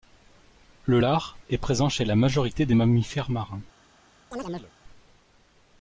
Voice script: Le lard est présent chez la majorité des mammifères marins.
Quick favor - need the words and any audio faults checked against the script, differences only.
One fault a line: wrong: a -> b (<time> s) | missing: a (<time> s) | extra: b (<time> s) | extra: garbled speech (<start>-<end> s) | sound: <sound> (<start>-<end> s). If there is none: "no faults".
sound: chirp (4.3-4.7 s)